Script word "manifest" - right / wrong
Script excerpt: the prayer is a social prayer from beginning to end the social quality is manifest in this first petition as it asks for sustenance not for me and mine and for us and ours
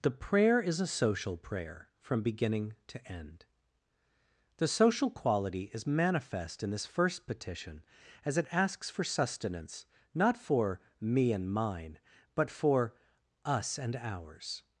right